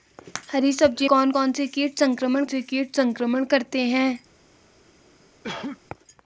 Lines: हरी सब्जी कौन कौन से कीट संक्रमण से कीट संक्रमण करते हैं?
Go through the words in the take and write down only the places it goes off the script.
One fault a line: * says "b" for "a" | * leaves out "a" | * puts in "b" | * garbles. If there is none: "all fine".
all fine